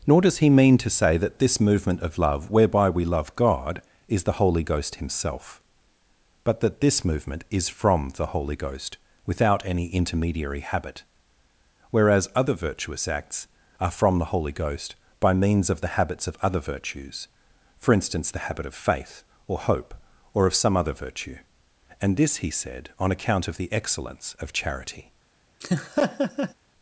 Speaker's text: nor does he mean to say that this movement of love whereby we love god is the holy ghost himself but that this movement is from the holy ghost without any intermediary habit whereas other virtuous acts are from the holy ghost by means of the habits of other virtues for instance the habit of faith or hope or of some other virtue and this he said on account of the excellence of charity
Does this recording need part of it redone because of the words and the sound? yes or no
yes